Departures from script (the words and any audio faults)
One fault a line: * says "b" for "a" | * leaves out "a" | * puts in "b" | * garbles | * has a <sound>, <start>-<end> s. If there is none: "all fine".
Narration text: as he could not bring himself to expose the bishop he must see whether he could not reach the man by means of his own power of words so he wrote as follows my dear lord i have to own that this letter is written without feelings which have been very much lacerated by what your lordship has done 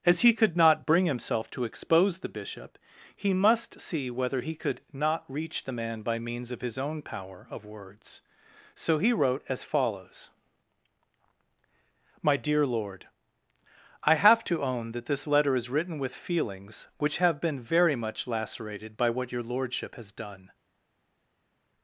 * says "with" for "without"